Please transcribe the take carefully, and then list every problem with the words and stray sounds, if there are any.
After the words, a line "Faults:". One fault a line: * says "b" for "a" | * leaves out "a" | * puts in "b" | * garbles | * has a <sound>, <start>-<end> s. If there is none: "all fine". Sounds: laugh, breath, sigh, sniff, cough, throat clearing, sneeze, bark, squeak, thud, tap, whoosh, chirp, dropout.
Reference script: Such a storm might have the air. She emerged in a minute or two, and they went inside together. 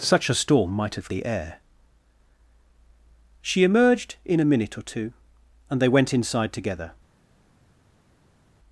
Such a storm might have the air. She emerged in a minute or two, and they went inside together.
Faults:
all fine